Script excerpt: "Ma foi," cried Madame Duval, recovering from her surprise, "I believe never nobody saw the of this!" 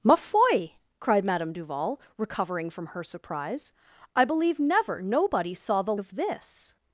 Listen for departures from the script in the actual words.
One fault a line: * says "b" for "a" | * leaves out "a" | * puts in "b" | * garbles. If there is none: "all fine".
all fine